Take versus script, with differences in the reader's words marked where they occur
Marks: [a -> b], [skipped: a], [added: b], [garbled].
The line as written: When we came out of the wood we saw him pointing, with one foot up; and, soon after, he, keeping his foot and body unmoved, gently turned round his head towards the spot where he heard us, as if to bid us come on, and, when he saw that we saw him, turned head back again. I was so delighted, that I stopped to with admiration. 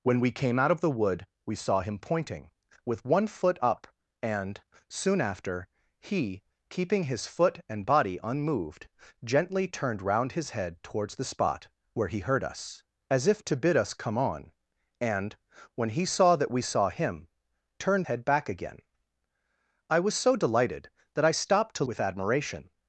When we came out of the wood we saw him pointing, with one foot up; and, soon after, he, keeping his foot and body unmoved, gently turned round his head towards the spot where he heard us, as if to bid us come on, and, when he saw that we saw him, turned head back again. I was so delighted, that I stopped to with admiration.